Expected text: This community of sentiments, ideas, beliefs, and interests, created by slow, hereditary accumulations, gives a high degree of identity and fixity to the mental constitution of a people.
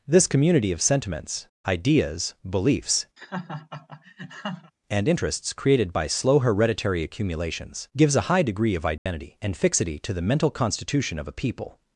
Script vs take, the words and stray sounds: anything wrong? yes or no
yes